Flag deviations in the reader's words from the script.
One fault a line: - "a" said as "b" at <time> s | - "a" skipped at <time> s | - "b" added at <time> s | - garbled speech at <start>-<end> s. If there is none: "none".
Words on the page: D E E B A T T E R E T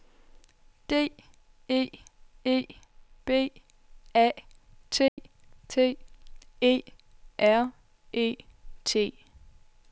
none